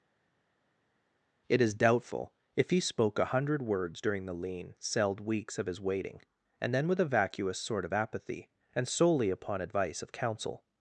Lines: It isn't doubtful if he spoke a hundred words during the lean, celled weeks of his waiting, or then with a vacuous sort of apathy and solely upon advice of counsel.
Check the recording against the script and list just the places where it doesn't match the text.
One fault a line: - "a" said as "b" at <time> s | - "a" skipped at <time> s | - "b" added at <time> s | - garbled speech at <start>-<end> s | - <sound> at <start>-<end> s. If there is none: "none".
- "isn't" said as "is" at 1.6 s
- "or" said as "and" at 6.6 s